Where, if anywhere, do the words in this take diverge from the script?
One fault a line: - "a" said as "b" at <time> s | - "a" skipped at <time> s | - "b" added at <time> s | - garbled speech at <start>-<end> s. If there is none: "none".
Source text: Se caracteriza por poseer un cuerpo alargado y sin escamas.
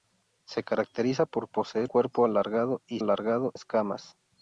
- "un" skipped at 1.9 s
- "sin" said as "alargado" at 3.0 s